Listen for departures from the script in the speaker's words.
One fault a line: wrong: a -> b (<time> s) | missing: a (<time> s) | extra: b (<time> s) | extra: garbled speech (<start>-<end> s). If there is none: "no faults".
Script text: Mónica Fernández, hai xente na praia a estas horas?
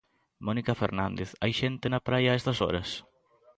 no faults